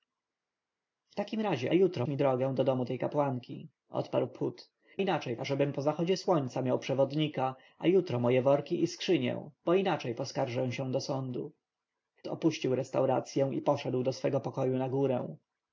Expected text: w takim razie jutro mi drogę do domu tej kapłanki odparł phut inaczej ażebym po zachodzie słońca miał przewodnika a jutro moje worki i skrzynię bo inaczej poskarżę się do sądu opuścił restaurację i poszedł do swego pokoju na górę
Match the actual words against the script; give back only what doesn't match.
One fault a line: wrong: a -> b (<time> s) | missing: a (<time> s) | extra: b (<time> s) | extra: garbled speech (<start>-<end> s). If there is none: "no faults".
no faults